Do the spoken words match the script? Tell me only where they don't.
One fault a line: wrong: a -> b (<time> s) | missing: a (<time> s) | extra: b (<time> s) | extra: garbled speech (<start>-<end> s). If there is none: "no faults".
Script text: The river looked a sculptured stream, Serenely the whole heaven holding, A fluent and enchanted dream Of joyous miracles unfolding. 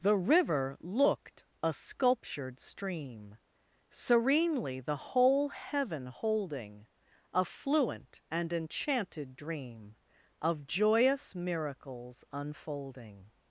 no faults